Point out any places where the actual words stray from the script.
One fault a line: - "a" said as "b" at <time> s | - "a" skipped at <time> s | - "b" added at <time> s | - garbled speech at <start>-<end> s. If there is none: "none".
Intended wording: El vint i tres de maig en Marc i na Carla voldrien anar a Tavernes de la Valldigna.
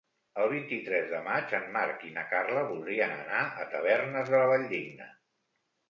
none